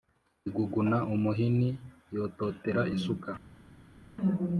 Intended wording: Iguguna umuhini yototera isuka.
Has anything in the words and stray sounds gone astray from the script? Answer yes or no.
no